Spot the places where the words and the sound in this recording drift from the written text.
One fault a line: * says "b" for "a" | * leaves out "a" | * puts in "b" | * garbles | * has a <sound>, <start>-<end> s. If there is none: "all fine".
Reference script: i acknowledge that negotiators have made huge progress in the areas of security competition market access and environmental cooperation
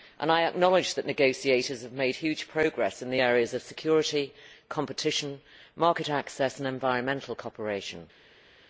all fine